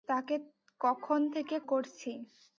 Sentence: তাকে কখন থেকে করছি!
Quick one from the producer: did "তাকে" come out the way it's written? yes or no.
yes